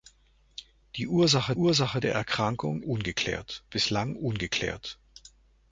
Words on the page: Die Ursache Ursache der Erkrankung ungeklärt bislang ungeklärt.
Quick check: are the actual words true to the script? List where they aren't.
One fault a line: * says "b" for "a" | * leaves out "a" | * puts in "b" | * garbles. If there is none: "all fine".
all fine